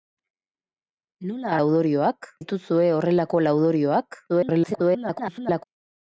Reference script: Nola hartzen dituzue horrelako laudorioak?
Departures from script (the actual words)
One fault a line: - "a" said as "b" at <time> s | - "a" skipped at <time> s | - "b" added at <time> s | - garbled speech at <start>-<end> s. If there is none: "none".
- "hartzen" said as "laudorioak" at 1.6 s
- garbled speech at 4.3-5.6 s